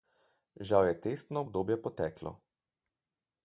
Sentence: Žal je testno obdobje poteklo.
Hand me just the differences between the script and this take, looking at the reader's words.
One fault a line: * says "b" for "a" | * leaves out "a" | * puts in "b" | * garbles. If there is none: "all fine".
all fine